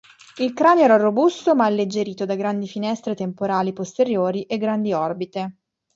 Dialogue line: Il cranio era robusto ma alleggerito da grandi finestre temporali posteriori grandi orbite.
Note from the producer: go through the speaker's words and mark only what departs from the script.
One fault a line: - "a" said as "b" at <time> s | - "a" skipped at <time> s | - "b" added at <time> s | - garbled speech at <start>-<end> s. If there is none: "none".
- "e" added at 4.4 s